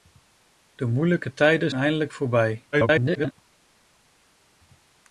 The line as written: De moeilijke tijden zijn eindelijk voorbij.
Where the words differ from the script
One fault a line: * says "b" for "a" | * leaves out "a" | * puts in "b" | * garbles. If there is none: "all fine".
* leaves out "zijn"
* garbles